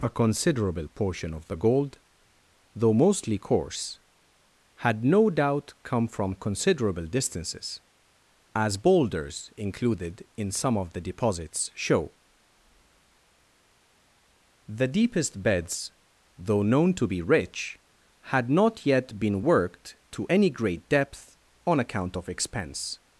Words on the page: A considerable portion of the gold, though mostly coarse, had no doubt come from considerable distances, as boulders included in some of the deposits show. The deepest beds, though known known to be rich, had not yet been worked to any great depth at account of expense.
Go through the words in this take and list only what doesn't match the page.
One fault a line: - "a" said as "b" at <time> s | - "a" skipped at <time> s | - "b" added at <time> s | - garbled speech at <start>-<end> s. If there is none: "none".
- "known" skipped at 16.9 s
- "at" said as "on" at 21.7 s